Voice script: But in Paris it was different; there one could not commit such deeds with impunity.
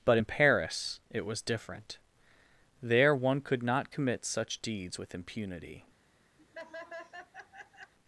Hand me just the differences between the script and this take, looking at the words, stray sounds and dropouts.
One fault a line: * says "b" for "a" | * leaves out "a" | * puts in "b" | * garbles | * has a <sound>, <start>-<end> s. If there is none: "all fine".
* has a laugh, 6.4-7.9 s